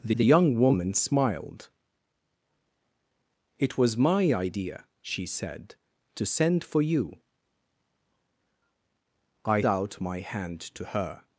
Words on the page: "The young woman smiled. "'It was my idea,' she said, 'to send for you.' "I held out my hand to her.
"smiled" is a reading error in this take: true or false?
false